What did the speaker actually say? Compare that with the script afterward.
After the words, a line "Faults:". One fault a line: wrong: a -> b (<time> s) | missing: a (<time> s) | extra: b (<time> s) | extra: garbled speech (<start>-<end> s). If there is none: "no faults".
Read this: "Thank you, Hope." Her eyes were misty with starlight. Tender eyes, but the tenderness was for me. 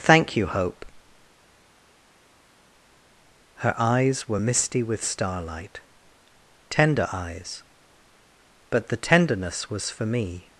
"Thank you, Hope." Her eyes were misty with starlight. Tender eyes, but the tenderness was for me.
Faults:
no faults